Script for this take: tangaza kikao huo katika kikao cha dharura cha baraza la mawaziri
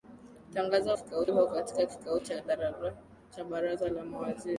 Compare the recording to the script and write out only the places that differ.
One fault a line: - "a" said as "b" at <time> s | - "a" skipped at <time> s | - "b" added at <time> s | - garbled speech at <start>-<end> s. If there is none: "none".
none